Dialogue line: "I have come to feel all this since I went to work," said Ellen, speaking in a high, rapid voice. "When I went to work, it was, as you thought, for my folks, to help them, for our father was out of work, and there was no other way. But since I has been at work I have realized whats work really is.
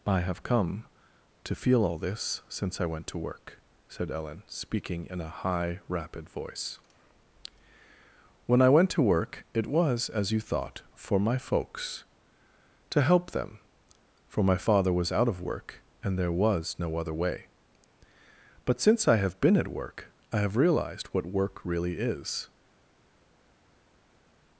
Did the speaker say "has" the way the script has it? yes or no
no